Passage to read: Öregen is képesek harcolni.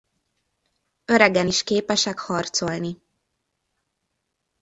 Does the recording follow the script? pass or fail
pass